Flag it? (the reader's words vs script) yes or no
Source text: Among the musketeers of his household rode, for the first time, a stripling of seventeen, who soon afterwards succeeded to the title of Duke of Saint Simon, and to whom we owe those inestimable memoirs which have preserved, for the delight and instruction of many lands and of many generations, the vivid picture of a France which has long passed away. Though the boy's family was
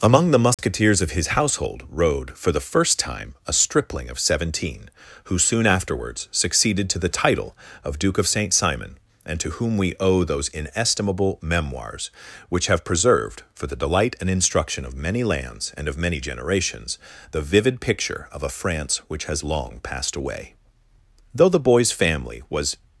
no